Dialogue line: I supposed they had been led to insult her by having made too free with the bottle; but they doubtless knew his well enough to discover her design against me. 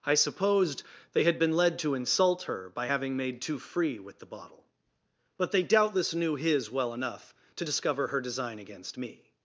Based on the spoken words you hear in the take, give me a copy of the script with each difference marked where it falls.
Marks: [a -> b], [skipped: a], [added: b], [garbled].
I supposed they had been led to insult her by having made too free with the bottle; but they doubtless knew his well enough to discover her design against me.